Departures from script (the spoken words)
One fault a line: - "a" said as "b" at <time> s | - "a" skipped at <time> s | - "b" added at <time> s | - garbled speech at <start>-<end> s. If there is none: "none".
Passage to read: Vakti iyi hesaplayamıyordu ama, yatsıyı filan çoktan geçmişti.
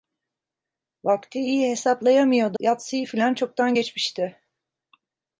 - "ama" skipped at 2.6 s